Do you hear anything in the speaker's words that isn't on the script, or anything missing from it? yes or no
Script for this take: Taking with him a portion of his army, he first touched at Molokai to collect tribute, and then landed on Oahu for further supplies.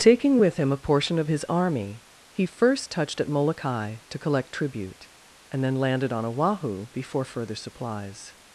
yes